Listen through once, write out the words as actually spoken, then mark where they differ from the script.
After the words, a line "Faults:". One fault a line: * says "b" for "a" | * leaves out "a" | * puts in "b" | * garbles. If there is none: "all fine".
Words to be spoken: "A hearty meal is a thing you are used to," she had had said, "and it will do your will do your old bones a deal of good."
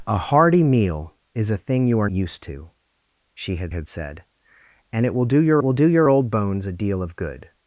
"A hearty meal is a thing you are used to," she had had said, "and it will do your will do your old bones a deal of good."
Faults:
all fine